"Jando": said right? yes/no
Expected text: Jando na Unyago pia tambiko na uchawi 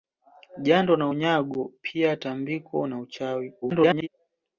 yes